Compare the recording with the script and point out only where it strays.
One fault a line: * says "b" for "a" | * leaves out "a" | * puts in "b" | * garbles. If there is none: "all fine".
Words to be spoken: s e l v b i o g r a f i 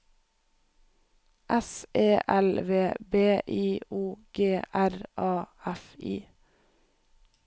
all fine